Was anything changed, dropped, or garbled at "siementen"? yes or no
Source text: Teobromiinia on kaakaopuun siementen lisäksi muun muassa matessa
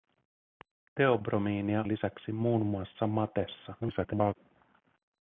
yes